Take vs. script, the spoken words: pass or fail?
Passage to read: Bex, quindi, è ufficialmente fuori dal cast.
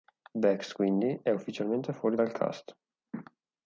pass